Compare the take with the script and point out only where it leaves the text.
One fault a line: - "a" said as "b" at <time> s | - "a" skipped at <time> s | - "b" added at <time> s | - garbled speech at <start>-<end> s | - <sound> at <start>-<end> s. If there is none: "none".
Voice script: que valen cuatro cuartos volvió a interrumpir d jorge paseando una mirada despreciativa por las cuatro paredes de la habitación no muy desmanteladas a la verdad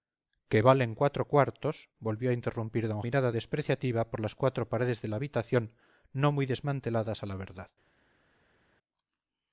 - "jorge paseando una" skipped at 2.9 s